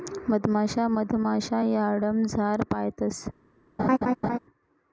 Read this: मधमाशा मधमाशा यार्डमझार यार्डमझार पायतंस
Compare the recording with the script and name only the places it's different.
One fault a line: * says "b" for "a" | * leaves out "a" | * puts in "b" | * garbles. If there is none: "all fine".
* leaves out "यार्डमझार"